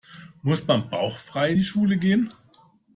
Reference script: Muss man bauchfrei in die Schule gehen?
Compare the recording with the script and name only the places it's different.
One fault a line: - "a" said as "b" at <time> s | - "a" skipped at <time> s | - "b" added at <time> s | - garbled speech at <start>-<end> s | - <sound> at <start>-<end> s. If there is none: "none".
none